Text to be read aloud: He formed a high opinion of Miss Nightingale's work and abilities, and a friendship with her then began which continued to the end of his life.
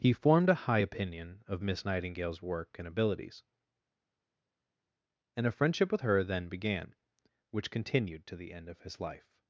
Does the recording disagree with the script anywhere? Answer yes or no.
no